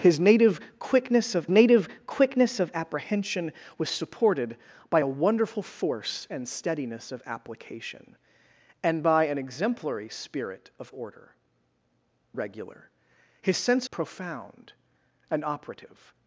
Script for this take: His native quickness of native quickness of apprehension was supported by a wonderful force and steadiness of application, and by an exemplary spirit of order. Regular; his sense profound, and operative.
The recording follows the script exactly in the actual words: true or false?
true